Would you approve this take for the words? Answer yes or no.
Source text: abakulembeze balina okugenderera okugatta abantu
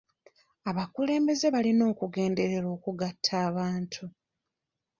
yes